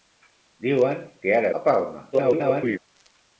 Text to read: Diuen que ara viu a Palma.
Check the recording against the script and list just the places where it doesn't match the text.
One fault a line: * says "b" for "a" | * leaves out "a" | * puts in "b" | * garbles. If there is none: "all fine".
* leaves out "viu"
* garbles